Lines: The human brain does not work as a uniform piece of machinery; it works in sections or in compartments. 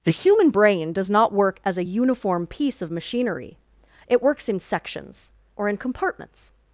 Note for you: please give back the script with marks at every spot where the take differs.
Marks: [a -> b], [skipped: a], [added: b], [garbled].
The human brain does not work as a uniform piece of machinery; it works in sections or in compartments.